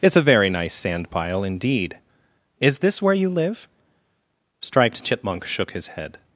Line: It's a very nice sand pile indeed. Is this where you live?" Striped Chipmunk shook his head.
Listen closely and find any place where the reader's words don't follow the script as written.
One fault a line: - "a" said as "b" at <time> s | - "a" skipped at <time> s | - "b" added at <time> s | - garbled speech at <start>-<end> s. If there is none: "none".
none